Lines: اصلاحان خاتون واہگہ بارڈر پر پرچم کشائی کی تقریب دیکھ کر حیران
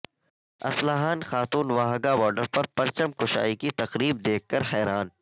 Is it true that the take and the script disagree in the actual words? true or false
false